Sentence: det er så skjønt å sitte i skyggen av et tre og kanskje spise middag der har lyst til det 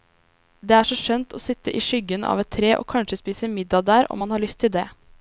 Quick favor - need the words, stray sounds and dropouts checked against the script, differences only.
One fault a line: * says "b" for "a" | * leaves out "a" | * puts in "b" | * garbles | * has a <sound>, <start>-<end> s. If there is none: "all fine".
* puts in "om man"